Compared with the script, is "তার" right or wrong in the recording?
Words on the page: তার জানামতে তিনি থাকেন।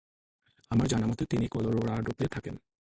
wrong